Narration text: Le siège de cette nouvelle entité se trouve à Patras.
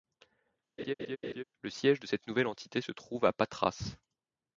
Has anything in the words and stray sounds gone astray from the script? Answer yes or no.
yes